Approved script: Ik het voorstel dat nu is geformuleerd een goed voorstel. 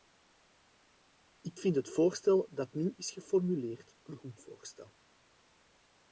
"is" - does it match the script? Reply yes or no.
yes